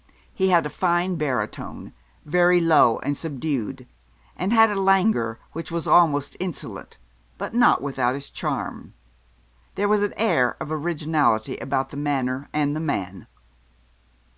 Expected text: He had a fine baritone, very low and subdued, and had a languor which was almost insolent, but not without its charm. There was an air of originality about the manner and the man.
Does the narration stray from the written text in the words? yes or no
no